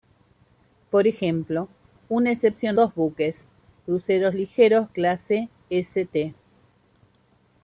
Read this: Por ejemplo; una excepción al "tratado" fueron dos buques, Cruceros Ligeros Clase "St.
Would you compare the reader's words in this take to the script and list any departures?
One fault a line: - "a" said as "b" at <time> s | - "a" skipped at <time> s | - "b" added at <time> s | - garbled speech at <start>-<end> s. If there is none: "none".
- "al tratado fueron" skipped at 2.8 s